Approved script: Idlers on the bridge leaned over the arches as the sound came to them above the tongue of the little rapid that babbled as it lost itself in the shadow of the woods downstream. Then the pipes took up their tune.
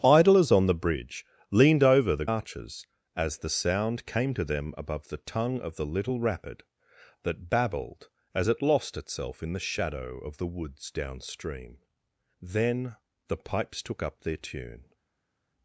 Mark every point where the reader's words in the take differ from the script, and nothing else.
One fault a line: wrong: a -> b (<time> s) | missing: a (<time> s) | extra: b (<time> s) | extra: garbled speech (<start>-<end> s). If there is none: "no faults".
no faults